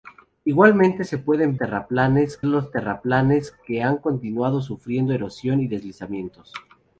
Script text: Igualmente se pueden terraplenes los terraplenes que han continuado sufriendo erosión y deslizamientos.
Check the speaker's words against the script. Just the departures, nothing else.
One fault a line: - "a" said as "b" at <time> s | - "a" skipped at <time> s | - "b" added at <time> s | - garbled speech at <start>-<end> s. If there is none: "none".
none